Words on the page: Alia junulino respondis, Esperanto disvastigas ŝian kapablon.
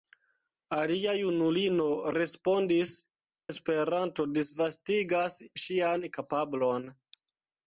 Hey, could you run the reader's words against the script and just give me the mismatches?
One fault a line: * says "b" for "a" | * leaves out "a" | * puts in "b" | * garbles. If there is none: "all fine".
all fine